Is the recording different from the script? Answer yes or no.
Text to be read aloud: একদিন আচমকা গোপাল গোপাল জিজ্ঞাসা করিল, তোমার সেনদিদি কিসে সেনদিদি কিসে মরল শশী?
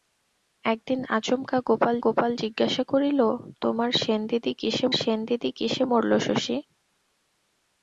no